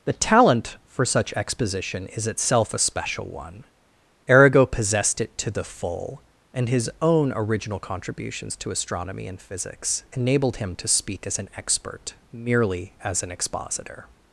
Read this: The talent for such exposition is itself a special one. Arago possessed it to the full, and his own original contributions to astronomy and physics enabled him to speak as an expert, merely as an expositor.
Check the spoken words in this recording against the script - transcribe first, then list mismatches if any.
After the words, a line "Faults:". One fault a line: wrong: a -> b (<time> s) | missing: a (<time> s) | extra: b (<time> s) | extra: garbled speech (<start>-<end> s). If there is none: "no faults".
The talent for such exposition is itself a special one. Arago possessed it to the full, and his own original contributions to astronomy and physics enabled him to speak as an expert, merely as an expositor.
Faults:
no faults